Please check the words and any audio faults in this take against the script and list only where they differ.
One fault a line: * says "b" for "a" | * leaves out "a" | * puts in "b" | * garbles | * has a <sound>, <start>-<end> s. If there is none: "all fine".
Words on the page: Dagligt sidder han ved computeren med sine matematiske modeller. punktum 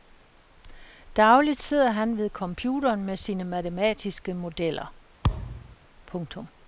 * has a thud, 5.2-5.8 s